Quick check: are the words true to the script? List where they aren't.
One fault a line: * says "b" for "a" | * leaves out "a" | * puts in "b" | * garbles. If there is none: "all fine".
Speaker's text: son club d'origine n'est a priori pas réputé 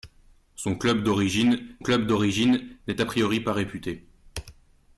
* puts in "club d'origine"